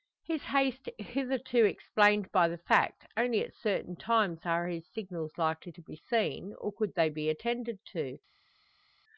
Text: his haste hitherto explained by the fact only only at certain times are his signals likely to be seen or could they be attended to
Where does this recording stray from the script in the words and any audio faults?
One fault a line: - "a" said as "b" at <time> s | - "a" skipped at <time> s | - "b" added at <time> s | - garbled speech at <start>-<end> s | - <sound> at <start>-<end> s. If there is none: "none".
- "only" skipped at 3.4 s